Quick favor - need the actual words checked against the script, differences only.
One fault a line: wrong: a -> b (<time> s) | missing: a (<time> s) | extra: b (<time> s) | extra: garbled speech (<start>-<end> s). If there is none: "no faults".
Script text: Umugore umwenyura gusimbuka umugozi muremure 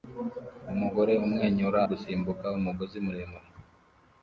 no faults